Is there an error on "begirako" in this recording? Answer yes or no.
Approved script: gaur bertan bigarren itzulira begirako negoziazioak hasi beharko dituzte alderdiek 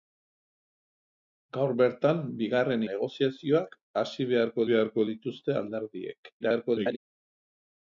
yes